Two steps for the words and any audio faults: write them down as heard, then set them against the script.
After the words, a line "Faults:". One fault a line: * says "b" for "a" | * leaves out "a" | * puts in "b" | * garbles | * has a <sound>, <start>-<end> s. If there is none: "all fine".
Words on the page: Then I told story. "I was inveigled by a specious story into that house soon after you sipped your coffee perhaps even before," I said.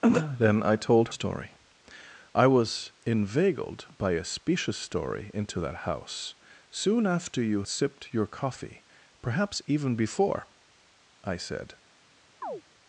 Then I told story. "I was inveigled by a specious story into that house soon after you sipped your coffee perhaps even before," I said.
Faults:
* has a chirp, 12.4-12.6 s